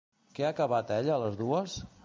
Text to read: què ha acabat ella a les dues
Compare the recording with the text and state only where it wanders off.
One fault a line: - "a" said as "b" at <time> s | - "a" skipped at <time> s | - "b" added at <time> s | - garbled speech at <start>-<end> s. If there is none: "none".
none